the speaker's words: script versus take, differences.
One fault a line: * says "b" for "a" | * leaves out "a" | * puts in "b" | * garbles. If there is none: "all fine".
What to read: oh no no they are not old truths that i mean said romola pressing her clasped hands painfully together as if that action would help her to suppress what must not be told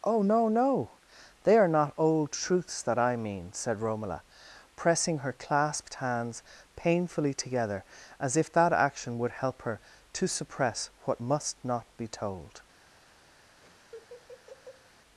all fine